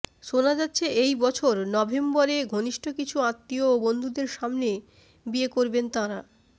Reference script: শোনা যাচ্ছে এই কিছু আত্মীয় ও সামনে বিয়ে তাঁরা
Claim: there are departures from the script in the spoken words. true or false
true